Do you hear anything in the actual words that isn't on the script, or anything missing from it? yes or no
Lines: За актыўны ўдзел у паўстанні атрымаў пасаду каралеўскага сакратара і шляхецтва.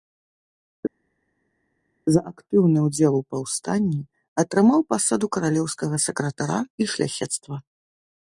no